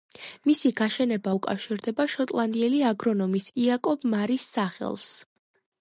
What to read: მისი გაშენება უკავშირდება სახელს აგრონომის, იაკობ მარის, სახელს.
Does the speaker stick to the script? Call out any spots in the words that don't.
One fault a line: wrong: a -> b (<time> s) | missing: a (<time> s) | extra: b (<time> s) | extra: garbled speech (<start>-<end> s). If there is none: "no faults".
wrong: სახელს -> შოტლანდიელი (2.2 s)